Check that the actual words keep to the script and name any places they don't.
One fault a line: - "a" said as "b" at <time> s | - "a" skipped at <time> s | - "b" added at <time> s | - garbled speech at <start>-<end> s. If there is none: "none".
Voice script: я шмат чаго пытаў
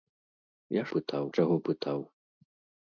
- "шмат" said as "пытаў" at 1.0 s